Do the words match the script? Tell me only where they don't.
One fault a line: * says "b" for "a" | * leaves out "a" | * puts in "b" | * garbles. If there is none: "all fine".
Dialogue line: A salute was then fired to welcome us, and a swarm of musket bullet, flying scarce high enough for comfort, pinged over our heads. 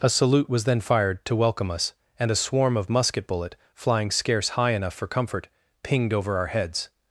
all fine